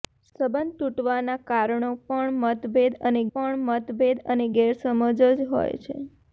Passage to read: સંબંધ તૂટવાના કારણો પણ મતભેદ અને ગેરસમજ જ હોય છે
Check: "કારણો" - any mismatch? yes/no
no